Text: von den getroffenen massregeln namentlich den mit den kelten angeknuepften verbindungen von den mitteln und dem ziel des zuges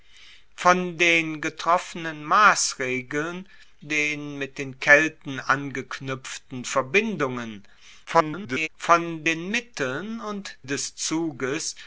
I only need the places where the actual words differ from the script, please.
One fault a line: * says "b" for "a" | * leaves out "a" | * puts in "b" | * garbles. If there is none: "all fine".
* leaves out "namentlich"
* garbles
* leaves out "dem ziel"